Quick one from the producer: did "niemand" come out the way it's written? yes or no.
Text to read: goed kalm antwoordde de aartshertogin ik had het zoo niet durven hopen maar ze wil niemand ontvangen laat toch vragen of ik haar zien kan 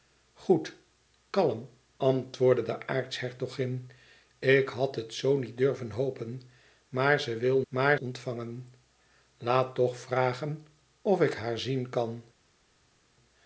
no